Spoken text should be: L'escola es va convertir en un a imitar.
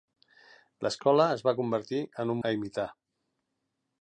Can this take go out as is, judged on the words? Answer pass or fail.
pass